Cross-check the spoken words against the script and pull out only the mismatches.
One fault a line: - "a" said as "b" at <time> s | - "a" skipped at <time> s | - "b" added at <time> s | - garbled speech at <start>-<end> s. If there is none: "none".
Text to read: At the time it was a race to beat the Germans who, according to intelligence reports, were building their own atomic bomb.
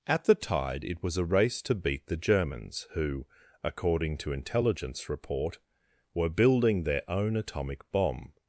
- "time" said as "tide" at 0.3 s
- "reports" said as "report" at 5.1 s